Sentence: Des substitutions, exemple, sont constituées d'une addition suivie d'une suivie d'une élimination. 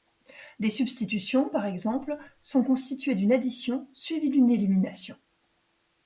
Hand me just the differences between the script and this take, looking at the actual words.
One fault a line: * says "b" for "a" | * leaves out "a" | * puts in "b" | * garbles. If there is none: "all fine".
* puts in "par"
* leaves out "suivie d'une"